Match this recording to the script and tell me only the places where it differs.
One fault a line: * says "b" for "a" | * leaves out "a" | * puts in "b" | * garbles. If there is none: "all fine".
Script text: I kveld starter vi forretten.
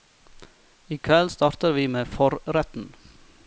* puts in "med"